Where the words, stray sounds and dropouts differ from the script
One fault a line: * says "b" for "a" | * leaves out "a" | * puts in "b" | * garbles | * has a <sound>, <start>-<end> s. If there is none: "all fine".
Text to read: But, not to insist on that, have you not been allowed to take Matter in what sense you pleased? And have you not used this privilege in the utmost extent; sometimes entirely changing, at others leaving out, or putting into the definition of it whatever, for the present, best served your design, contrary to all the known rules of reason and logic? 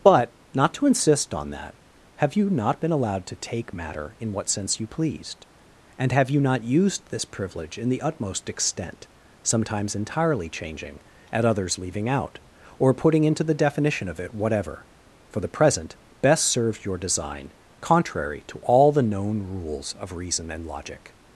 all fine